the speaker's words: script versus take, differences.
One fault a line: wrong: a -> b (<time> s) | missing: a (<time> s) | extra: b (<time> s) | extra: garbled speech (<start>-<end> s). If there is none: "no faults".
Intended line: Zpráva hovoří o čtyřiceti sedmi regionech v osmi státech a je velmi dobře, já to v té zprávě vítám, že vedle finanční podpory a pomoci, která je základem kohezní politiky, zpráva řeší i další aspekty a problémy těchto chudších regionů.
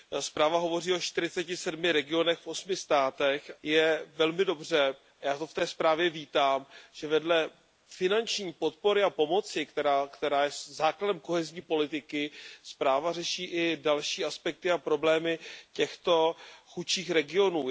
missing: a (3.5 s)